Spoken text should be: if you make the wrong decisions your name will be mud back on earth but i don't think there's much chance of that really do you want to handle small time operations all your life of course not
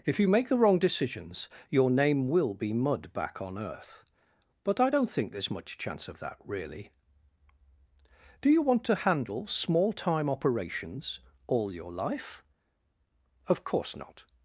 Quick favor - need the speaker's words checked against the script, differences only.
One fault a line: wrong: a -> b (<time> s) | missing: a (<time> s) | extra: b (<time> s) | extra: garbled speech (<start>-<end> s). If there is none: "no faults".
no faults